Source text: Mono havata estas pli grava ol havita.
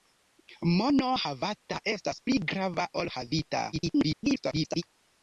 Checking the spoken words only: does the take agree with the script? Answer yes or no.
no